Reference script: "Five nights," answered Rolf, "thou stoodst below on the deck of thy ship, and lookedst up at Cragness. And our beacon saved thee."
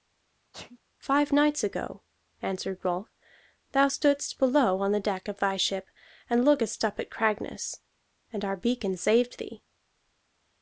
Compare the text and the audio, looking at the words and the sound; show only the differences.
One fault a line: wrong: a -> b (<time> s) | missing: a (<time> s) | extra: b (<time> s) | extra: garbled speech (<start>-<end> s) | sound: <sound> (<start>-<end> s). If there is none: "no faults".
sound: sneeze (0.5-0.8 s)
extra: ago (1.6 s)